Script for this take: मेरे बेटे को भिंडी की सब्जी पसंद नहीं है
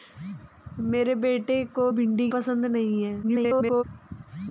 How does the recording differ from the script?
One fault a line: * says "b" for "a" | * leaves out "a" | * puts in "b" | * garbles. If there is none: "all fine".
* leaves out "की सब्जी"
* garbles